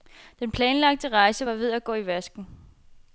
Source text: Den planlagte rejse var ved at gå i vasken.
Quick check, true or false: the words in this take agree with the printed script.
true